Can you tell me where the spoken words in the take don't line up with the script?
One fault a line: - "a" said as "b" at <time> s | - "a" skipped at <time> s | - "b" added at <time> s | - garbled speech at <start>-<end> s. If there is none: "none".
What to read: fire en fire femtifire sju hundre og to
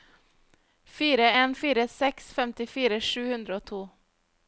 - "seks" added at 2.0 s